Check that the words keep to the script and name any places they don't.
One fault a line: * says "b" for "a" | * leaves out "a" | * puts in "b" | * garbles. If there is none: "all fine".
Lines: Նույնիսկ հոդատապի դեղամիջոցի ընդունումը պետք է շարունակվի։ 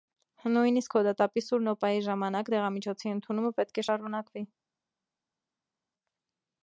* puts in "սուր նոպայի ժամանակ"